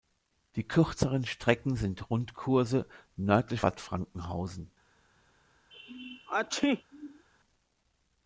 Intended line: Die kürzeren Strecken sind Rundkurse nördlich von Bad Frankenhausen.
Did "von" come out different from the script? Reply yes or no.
yes